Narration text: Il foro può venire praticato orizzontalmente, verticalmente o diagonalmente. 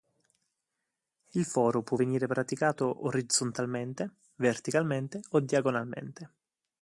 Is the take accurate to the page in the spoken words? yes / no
yes